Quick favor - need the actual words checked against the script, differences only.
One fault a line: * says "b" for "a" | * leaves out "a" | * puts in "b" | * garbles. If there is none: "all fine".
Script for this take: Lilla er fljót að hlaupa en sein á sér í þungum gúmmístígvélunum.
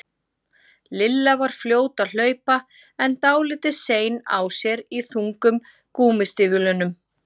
* says "var" for "er"
* puts in "dálítið"